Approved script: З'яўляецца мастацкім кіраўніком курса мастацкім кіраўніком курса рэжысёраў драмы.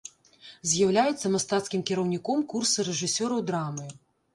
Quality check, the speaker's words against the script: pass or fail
fail